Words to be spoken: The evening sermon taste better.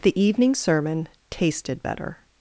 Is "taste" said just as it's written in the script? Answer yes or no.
no